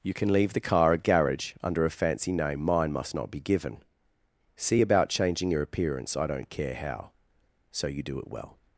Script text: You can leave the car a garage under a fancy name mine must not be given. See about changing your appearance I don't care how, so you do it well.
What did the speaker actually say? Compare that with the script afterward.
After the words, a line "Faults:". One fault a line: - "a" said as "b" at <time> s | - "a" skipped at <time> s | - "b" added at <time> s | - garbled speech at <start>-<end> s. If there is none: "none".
You can leave the car a garage under a fancy name mine must not be given. See about changing your appearance I don't care how, so you do it well.
Faults:
none